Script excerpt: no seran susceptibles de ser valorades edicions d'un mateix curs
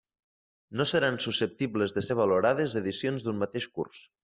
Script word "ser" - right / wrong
right